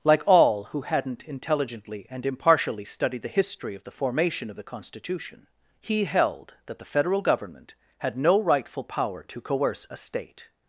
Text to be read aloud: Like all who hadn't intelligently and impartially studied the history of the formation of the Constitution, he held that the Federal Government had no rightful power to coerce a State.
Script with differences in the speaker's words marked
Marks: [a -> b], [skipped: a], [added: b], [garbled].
Like all who hadn't intelligently and impartially studied the history of the formation of the Constitution, he held that the Federal Government had no rightful power to coerce a State.